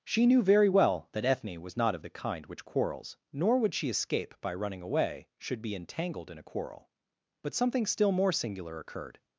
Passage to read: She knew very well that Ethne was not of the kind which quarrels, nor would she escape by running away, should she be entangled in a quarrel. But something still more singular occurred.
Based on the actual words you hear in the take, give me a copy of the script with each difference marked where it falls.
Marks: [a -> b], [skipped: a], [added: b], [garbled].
She knew very well that Ethne was not of the kind which quarrels, nor would she escape by running away, should [skipped: she] be entangled in a quarrel. But something still more singular occurred.